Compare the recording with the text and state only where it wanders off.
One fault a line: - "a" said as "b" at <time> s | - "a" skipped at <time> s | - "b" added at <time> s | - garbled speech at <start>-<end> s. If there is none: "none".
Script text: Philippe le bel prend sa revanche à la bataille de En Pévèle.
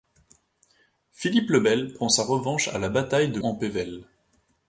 none